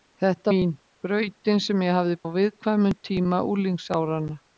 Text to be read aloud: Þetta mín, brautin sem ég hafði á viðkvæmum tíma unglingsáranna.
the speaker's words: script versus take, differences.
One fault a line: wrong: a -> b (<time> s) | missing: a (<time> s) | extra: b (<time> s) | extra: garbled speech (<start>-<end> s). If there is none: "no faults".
no faults